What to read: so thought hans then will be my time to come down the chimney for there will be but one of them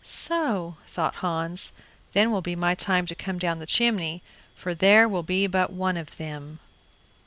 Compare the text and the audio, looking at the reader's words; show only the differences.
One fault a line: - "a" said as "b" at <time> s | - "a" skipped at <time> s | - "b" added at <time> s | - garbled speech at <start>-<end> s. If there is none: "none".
none